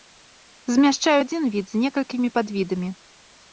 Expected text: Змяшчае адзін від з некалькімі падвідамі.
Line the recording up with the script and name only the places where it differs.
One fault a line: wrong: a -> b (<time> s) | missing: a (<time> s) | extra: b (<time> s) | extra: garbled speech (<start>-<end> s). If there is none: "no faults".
no faults